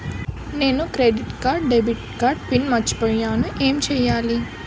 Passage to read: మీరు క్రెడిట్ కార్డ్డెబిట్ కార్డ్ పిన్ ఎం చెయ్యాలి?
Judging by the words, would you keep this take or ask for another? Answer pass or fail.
fail